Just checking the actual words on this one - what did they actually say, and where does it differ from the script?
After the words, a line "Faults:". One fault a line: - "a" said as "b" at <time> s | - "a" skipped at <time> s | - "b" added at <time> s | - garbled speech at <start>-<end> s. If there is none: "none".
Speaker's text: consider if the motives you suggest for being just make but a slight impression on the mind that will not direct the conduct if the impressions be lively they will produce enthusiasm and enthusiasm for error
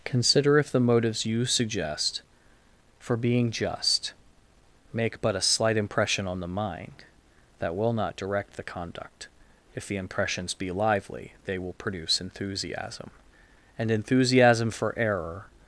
consider if the motives you suggest for being just make but a slight impression on the mind that will not direct the conduct if the impressions be lively they will produce enthusiasm and enthusiasm for error
Faults:
none